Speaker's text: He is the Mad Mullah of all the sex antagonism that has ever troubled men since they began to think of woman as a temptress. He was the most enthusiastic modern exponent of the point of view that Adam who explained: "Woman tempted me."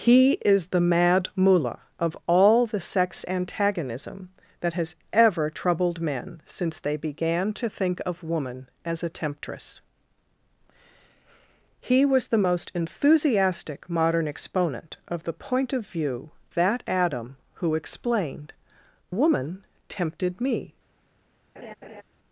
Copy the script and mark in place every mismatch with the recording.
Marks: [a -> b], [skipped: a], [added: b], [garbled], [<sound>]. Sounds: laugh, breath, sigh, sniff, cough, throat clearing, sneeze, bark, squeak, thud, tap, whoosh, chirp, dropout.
He is the Mad Mullah of all the sex antagonism that has ever troubled men since they began to think of woman as a temptress. He was the most enthusiastic modern exponent of the point of view that Adam who explained: "Woman tempted me." [laugh]